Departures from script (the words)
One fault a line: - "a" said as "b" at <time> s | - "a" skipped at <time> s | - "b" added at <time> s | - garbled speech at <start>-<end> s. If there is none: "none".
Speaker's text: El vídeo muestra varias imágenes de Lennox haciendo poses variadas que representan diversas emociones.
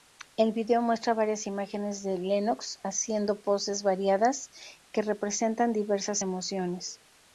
none